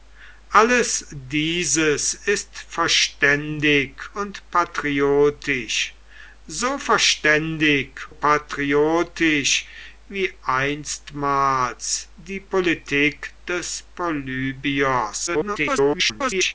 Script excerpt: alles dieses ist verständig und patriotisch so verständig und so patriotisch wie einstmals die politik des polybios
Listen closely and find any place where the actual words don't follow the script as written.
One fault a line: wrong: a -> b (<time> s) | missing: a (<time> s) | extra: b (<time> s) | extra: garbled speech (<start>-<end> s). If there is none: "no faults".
missing: und so (8.0 s)
extra: garbled speech (15.3-16.5 s)